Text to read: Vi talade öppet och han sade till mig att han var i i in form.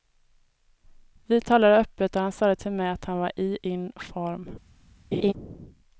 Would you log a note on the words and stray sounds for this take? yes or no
yes